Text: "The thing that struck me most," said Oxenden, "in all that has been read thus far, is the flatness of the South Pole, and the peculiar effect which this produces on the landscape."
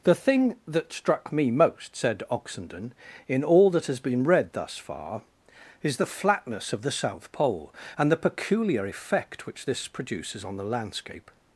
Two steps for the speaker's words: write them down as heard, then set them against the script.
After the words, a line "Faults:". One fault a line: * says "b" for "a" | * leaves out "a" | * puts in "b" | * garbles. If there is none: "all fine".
"The thing that struck me most," said Oxenden, "in all that has been read thus far, is the flatness of the South Pole, and the peculiar effect which this produces on the landscape."
Faults:
all fine